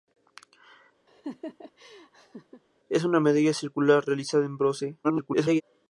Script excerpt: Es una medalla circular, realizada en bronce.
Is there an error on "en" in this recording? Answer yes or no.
no